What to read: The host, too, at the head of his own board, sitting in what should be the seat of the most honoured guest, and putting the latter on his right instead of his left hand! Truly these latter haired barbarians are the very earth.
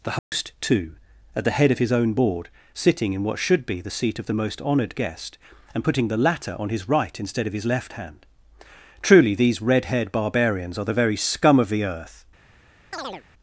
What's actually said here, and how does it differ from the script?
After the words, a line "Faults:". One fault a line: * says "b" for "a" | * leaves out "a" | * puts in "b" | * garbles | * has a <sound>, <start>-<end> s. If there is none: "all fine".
The host, too, at the head of his own board, sitting in what should be the seat of the most honoured guest, and putting the latter on his right instead of his left hand! Truly these red haired barbarians are the very scum of the earth.
Faults:
* has a dropout, 0.2-0.3 s
* says "red" for "latter"
* puts in "scum of the"
* has a chirp, 12.9-13.2 s